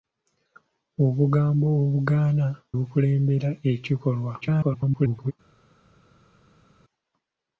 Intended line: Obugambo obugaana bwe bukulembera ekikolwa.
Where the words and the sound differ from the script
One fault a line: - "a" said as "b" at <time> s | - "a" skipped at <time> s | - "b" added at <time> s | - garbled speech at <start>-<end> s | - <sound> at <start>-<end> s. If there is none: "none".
- "bwe" skipped at 2.5 s
- garbled speech at 4.4-5.3 s